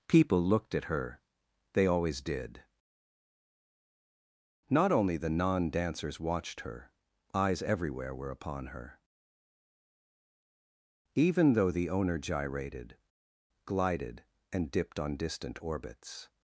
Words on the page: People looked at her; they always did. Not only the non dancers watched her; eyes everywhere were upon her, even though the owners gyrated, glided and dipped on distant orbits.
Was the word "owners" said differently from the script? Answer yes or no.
yes